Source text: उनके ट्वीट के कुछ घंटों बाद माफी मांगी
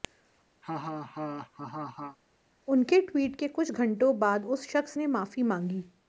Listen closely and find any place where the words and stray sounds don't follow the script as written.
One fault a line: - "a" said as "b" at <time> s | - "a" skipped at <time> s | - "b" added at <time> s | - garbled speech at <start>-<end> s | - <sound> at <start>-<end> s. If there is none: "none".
- laugh at 0.6-2.2 s
- "उस शख्स ने" added at 4.5 s